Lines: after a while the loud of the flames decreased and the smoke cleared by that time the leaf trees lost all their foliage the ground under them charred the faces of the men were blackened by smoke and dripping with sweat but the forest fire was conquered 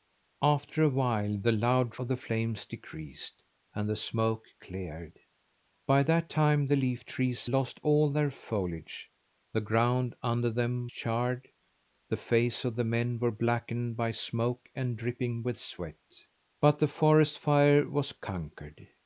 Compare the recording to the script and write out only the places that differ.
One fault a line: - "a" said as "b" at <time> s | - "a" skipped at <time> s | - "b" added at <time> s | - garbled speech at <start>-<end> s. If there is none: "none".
none